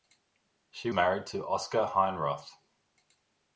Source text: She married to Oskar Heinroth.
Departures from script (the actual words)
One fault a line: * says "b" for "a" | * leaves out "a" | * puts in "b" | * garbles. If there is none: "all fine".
all fine